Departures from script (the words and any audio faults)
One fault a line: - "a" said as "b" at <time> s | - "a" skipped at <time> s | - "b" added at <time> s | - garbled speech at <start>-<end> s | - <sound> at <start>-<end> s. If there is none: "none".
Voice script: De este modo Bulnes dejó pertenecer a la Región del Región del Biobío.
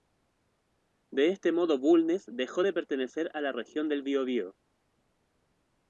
- "de" added at 2.6 s
- "Región del" skipped at 4.0 s